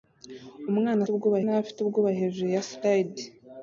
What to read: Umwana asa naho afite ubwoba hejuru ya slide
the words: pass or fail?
fail